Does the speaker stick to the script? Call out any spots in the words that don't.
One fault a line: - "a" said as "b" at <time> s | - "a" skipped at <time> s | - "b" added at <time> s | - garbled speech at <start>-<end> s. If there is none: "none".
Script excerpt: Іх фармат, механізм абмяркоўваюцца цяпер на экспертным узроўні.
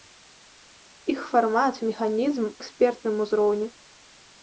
- "абмяркоўваюцца цяпер на" skipped at 2.5 s